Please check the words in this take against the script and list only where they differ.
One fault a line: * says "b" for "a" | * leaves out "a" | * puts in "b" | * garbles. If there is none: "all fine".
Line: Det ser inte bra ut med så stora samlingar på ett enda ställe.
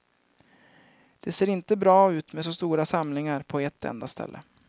all fine